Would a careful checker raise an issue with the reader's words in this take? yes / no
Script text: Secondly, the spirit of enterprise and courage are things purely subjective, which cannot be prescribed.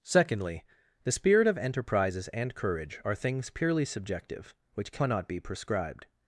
yes